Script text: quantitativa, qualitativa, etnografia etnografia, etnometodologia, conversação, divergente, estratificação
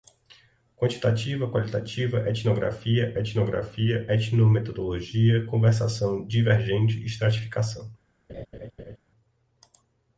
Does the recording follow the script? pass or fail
pass